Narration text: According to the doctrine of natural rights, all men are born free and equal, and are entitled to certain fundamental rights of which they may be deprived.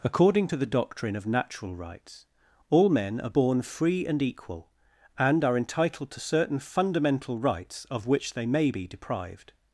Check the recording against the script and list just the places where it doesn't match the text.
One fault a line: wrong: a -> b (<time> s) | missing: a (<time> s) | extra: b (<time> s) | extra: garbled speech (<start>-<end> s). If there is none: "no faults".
no faults